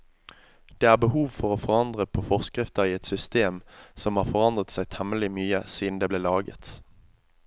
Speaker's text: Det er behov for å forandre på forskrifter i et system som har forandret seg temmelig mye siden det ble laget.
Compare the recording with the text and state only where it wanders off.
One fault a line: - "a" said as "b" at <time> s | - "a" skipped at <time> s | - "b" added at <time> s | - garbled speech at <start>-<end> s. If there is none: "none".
none